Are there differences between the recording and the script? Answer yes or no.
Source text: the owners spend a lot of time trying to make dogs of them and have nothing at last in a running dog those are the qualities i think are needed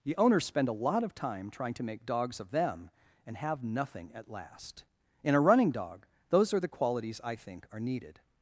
no